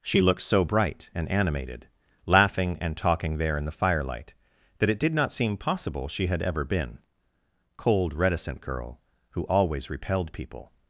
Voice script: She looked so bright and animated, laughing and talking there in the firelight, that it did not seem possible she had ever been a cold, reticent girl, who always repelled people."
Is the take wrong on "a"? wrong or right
wrong